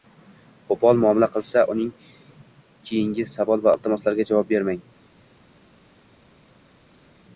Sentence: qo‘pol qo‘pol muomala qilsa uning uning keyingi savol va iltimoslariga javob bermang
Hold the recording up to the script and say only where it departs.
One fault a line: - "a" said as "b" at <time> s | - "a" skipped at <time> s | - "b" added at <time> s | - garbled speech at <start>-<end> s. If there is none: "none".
- "qo‘pol" skipped at 1.0 s
- "uning" skipped at 1.9 s